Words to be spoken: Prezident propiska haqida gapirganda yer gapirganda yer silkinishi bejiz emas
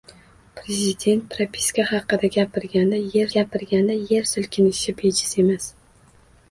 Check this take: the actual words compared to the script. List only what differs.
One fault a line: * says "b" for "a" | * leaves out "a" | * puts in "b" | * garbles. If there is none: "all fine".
all fine